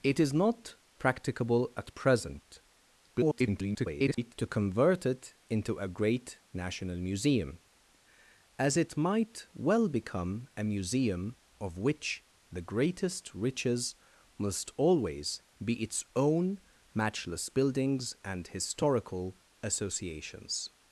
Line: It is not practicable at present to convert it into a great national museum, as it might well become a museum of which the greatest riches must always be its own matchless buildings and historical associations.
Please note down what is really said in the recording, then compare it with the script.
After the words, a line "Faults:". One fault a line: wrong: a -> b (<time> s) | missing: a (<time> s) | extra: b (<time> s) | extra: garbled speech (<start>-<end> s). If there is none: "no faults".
It is not practicable at present [garbled] to convert it into a great national museum, as it might well become a museum of which the greatest riches must always be its own matchless buildings and historical associations.
Faults:
extra: garbled speech (3.1-4.3 s)